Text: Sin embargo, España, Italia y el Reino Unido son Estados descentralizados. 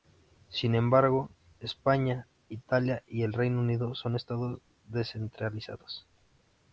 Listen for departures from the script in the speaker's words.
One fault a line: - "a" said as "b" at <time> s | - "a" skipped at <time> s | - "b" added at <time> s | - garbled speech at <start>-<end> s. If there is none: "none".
none